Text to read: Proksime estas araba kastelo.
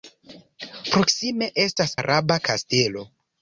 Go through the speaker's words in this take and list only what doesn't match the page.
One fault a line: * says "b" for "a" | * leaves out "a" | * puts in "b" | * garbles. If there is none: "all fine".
all fine